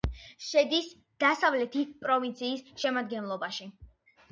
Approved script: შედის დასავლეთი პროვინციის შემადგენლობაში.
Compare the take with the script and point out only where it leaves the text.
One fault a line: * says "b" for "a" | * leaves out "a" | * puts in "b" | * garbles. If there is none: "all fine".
all fine